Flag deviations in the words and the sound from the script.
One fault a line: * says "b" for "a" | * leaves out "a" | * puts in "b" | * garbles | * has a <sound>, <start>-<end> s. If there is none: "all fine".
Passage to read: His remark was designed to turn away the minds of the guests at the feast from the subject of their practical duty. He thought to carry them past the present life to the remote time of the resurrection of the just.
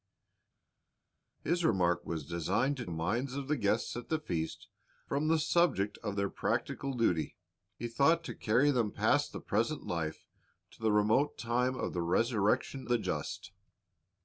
* leaves out "turn away the"
* leaves out "of"